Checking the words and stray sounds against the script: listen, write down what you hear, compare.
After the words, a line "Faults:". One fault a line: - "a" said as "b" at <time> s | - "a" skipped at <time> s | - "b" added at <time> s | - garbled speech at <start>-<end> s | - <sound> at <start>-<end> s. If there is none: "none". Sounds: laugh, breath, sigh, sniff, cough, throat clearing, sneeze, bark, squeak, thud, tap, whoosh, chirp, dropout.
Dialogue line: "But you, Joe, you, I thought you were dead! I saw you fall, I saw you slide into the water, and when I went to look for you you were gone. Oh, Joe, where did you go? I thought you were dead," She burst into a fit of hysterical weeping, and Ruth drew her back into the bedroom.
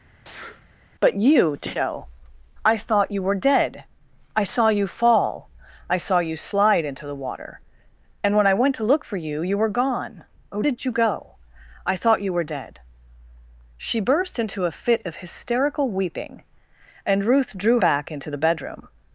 "But you, Joe, I thought you were dead! I saw you fall, I saw you slide into the water, and when I went to look for you you were gone. Oh, Did you go? I thought you were dead," She burst into a fit of hysterical weeping, and Ruth drew back into the bedroom.
Faults:
- sneeze at 0.1-0.7 s
- "you" skipped at 2.1 s
- "Joe where" skipped at 10.6 s
- "her" skipped at 17.8 s